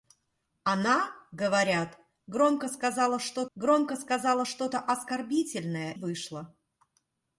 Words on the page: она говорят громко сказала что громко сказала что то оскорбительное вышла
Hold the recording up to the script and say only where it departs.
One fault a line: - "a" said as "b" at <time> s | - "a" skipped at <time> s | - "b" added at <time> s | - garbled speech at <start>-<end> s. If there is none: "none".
none